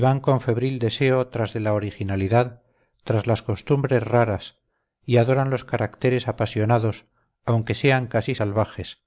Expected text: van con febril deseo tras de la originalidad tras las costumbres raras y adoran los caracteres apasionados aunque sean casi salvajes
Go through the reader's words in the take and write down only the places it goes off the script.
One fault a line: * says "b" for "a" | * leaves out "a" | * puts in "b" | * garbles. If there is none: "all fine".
all fine